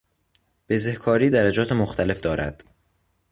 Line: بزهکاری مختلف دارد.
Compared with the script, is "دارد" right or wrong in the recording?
right